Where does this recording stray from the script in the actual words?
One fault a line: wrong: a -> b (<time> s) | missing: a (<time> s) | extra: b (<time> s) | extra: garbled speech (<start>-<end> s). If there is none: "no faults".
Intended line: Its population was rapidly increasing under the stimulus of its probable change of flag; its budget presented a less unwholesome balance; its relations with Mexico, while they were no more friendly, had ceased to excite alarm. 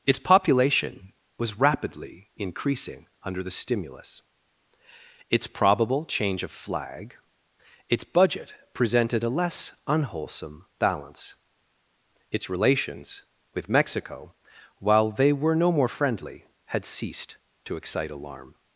missing: of (4.2 s)